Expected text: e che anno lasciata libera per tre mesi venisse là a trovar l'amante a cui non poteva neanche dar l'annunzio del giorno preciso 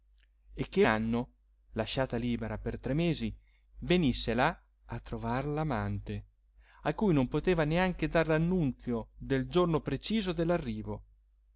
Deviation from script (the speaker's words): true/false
false